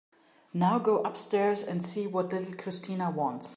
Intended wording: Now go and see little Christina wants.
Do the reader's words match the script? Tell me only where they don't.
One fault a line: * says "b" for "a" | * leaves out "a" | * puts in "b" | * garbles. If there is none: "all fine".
* puts in "upstairs"
* puts in "what"